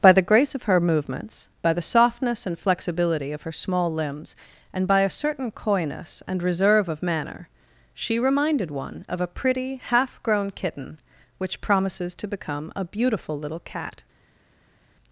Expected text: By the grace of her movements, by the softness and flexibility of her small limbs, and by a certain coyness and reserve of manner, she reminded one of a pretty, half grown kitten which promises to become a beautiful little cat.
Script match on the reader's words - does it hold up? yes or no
yes